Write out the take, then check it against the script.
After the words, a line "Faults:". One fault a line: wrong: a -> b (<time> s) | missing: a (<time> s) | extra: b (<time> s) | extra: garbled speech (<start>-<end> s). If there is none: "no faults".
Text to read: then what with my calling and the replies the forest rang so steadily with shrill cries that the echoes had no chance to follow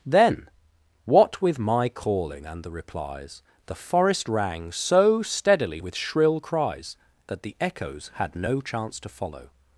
then what with my calling and the replies the forest rang so steadily with shrill cries that the echoes had no chance to follow
Faults:
no faults